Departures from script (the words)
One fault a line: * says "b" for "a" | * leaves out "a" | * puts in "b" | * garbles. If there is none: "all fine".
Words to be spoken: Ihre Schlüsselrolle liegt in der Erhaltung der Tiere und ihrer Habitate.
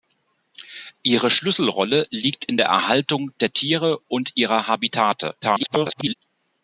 * garbles